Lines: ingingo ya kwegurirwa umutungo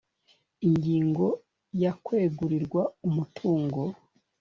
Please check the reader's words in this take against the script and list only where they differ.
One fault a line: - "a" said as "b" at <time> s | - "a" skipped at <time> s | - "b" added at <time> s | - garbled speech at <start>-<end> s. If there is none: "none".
none